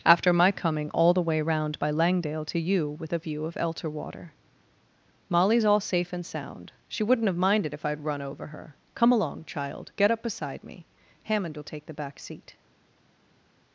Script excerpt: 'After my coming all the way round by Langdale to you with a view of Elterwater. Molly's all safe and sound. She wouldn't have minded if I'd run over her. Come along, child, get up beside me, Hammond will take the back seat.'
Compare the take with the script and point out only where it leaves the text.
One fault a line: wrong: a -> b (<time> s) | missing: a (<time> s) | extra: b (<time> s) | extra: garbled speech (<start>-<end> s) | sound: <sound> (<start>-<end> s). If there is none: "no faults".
no faults